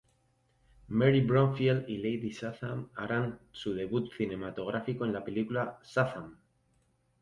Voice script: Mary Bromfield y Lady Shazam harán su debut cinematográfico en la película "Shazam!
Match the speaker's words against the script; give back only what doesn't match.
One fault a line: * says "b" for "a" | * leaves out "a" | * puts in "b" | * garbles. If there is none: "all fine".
all fine